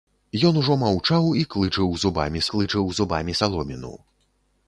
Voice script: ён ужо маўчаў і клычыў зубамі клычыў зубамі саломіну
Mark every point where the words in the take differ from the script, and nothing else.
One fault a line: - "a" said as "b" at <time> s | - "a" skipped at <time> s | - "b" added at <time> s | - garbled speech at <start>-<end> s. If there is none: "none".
none